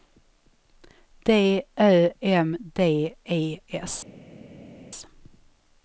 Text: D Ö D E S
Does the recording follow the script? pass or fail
fail